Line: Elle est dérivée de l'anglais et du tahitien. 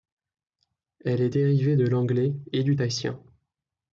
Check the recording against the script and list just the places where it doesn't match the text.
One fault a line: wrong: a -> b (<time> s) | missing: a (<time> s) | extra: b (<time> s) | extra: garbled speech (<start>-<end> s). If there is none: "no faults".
no faults